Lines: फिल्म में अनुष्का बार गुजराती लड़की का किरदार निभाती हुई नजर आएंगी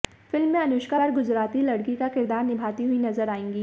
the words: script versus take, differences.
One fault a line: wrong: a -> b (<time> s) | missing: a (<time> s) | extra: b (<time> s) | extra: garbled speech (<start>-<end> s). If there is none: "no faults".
no faults